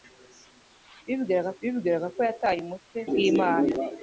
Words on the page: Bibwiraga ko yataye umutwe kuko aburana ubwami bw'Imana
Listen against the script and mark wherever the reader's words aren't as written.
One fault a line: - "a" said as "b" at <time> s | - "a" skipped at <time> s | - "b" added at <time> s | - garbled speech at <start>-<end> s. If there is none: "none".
- "bibwiraga" added at 1.6 s
- "kuko aburana ubwami" skipped at 3.0 s